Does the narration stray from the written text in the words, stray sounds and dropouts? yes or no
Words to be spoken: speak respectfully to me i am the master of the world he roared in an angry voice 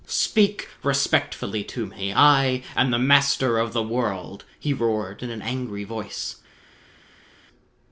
no